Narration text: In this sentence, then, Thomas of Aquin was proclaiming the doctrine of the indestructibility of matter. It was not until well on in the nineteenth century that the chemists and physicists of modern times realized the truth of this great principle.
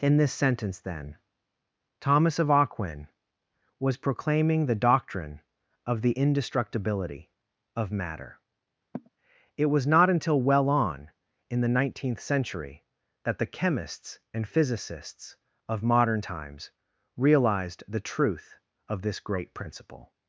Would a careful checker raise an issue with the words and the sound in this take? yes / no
yes